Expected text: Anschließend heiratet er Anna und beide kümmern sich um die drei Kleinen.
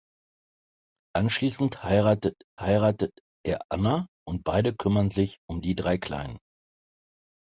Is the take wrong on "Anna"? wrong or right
right